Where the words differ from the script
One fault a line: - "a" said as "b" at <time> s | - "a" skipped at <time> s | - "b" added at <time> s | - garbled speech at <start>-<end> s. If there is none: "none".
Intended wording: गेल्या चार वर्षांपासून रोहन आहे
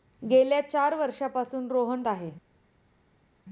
none